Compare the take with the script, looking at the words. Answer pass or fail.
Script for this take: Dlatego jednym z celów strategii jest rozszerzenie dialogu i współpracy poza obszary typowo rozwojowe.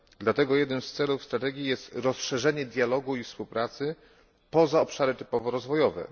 pass